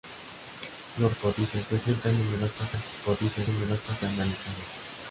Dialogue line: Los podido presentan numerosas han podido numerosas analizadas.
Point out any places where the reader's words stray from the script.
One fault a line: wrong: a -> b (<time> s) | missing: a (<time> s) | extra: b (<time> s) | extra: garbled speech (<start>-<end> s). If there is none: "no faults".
no faults